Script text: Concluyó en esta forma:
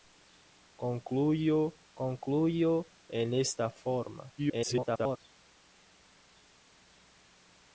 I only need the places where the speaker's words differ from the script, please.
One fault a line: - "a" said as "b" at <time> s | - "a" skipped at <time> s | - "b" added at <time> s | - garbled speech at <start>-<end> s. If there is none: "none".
- "concluyó" added at 1.9 s
- garbled speech at 4.4-5.2 s